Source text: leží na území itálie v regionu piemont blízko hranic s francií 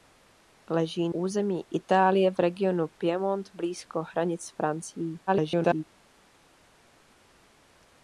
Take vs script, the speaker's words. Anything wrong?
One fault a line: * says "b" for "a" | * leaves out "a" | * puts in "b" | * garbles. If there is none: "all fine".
* leaves out "na"
* garbles